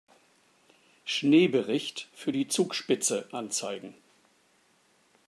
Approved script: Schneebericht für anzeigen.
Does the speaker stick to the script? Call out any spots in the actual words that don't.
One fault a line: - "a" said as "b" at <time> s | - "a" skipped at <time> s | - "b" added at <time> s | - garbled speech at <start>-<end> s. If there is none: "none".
- "die Zugspitze" added at 2.3 s